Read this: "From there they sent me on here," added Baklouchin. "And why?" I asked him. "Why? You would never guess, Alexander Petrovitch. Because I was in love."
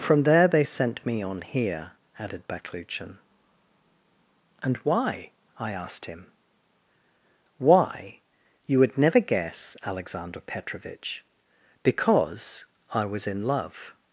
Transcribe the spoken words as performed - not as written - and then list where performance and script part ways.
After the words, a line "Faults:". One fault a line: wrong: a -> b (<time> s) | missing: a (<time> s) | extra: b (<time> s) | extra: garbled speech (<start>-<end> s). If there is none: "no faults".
"From there they sent me on here," added Baklouchin. "And why?" I asked him. "Why? You would never guess, Alexander Petrovitch. Because I was in love."
Faults:
no faults